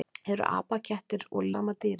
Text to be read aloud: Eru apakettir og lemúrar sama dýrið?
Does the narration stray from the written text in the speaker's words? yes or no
yes